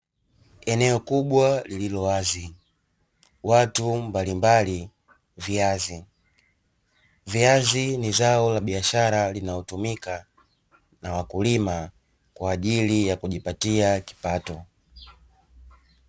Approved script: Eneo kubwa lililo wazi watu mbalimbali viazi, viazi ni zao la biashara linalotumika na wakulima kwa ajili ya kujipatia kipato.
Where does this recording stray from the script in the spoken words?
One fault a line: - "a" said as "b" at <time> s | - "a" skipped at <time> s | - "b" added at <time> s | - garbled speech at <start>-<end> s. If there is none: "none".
none